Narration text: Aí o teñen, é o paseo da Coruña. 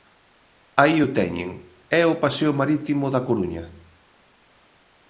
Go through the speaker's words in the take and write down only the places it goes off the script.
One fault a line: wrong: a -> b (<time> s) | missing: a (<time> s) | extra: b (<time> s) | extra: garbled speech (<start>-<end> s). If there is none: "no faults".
extra: marítimo (2.6 s)